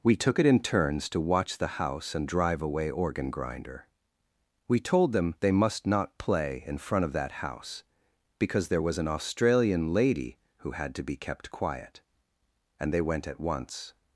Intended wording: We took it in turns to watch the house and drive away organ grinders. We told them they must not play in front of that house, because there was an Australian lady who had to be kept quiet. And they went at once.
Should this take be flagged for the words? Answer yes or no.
yes